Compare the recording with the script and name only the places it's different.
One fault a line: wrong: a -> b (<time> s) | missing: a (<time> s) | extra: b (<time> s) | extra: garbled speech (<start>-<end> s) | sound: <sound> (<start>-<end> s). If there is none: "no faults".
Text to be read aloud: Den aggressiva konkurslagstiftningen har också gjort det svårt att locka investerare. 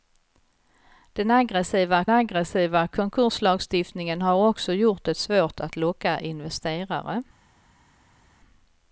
extra: aggressiva (2.1 s)